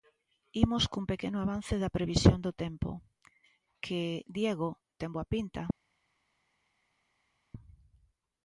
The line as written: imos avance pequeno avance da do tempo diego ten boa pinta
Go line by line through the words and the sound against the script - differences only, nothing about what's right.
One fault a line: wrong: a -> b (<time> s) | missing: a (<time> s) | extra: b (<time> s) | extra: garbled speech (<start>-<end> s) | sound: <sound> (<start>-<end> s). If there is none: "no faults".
wrong: avance -> cun (0.9 s)
extra: previsión (2.0 s)
extra: que (3.8 s)